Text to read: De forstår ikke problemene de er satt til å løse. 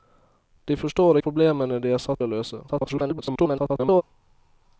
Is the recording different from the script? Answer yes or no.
yes